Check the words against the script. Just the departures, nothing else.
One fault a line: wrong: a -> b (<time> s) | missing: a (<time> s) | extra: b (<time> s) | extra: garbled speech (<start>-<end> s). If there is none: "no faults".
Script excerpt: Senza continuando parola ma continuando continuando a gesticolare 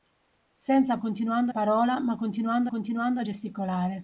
no faults